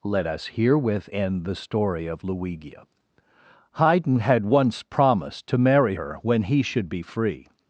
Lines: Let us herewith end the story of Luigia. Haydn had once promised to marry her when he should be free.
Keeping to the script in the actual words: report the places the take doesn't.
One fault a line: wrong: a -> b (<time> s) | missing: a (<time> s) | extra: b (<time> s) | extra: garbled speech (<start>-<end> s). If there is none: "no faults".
no faults